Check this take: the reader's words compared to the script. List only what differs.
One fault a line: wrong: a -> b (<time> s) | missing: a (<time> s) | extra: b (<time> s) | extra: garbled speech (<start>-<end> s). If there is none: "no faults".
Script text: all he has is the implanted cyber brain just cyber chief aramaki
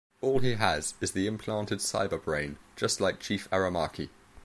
wrong: cyber -> like (3.0 s)